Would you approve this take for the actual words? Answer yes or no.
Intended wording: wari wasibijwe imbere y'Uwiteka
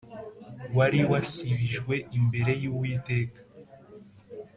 yes